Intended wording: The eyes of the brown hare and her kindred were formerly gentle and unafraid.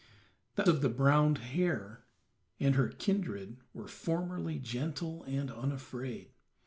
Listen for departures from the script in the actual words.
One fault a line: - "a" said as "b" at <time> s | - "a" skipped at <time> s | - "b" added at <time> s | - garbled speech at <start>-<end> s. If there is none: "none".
- "eyes" skipped at 0.7 s